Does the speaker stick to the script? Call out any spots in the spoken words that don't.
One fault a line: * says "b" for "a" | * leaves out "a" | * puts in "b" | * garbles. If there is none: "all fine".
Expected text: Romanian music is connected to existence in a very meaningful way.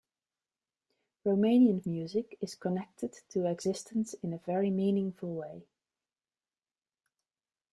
all fine